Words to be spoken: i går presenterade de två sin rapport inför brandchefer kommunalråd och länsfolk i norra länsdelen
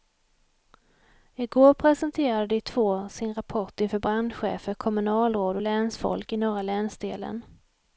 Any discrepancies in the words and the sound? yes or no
no